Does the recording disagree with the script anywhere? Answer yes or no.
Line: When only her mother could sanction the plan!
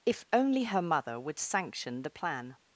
yes